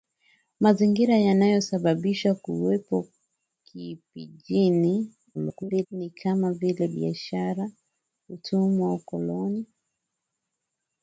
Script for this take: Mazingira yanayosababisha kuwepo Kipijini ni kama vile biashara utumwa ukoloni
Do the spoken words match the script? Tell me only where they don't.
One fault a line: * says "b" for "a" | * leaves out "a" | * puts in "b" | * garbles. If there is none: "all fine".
* garbles